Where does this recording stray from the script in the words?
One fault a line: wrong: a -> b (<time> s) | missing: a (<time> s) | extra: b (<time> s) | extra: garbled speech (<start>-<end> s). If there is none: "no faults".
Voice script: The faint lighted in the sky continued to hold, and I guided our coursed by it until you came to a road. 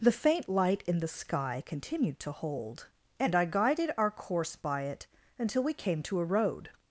wrong: lighted -> light (0.5 s)
wrong: coursed -> course (4.1 s)
wrong: you -> we (5.6 s)